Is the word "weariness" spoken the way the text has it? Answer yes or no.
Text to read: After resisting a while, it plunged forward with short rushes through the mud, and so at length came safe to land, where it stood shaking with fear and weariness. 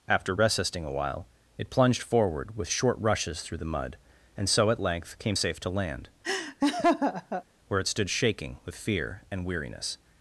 yes